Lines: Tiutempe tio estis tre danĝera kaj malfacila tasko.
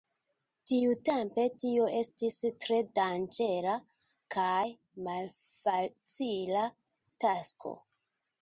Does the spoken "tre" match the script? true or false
true